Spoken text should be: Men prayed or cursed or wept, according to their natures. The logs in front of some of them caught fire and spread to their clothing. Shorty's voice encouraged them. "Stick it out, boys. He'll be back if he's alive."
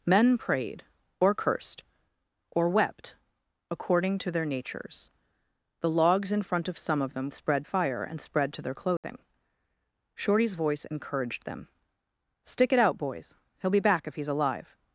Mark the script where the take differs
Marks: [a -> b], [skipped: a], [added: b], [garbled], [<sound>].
Men prayed or cursed or wept, according to their natures. The logs in front of some of them [caught -> spread] fire and spread to their clothing. [dropout] Shorty's voice encouraged them. "Stick it out, boys. He'll be back if he's alive."